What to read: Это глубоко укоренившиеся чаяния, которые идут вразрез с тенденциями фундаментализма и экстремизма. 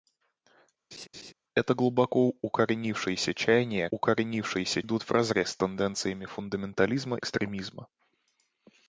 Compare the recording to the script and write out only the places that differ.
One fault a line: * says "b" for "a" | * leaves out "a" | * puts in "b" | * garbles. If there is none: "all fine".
* says "укоренившиеся" for "которые"
* leaves out "и"